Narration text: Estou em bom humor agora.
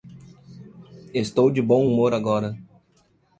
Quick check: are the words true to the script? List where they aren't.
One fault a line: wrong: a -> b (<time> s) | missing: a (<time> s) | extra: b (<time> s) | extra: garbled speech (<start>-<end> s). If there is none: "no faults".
wrong: em -> de (1.5 s)